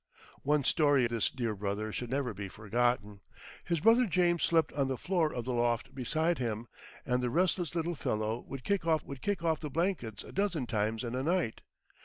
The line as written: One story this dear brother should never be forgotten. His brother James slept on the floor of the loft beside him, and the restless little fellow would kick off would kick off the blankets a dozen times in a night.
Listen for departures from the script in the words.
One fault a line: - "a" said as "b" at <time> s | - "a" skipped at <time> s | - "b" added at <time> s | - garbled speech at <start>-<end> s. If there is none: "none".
none